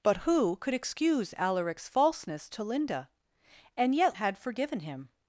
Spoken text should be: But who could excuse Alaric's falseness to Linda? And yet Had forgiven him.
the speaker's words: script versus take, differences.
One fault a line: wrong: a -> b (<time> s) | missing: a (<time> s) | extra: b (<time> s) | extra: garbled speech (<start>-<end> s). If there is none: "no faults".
no faults